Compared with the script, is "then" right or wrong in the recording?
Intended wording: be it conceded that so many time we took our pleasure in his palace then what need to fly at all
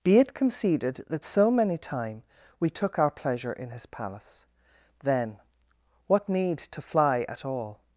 right